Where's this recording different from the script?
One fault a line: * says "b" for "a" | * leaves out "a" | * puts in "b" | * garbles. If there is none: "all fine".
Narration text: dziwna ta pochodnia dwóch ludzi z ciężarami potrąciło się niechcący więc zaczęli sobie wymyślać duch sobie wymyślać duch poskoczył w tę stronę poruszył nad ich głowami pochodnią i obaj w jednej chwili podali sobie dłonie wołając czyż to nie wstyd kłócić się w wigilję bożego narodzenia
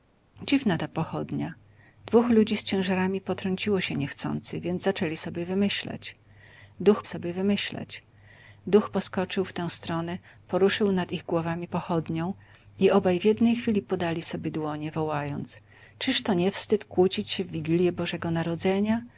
all fine